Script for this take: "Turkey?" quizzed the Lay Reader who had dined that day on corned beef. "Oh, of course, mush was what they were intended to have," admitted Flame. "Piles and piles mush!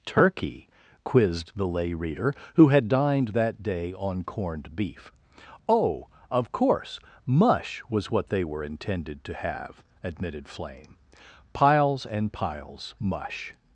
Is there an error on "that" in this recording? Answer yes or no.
no